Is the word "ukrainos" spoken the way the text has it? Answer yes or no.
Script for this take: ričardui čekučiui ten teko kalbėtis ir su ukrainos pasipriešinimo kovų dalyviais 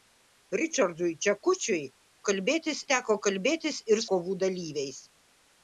no